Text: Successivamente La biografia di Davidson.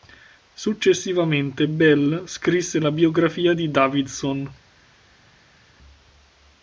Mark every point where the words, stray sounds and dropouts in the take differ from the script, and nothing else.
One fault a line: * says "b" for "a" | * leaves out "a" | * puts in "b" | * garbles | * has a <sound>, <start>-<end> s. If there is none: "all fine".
* puts in "Bell scrisse"